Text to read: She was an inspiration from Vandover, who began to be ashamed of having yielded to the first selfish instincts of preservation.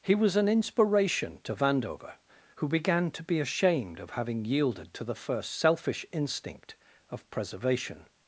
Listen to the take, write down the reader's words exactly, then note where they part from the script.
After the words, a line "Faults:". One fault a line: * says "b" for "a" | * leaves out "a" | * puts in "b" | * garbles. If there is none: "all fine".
He was an inspiration to Vandover, who began to be ashamed of having yielded to the first selfish instinct of preservation.
Faults:
* says "He" for "She"
* says "to" for "from"
* says "instinct" for "instincts"